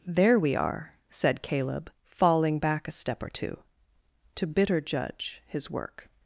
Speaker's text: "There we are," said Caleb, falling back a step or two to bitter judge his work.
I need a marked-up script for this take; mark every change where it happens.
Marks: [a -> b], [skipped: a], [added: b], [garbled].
"There we are," said Caleb, falling back a step or two to bitter judge his work.